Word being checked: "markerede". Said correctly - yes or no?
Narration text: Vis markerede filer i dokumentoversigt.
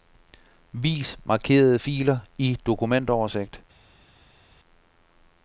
yes